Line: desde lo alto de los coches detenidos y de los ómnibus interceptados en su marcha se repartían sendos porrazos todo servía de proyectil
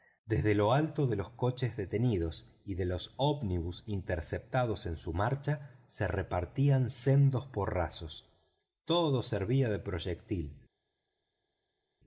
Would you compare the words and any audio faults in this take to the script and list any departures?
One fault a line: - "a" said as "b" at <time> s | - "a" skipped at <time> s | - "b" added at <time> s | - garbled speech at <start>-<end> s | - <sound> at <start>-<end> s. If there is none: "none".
none